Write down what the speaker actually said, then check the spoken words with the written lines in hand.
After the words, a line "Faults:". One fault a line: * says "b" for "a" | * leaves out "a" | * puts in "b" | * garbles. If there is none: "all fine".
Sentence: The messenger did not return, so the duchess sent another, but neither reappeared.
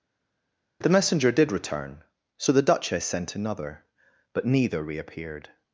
The messenger did return, so the duchess sent another, but neither reappeared.
Faults:
* leaves out "not"